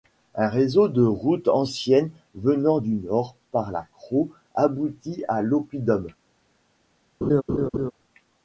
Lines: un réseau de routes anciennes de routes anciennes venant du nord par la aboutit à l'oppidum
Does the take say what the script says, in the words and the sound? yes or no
no